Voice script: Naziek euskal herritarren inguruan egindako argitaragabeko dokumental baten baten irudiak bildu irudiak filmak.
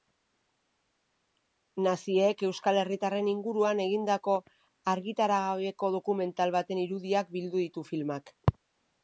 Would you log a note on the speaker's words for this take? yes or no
yes